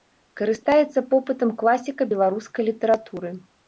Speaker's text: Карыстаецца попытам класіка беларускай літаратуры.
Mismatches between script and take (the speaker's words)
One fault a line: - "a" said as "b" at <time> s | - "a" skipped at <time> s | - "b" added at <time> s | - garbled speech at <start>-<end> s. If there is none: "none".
none